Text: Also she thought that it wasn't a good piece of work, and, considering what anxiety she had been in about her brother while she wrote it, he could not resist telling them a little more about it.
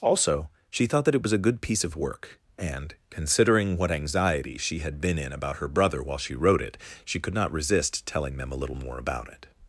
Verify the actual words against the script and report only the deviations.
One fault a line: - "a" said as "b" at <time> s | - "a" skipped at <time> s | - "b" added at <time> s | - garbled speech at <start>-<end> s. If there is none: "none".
- "wasn't" said as "was" at 1.2 s
- "he" said as "she" at 7.0 s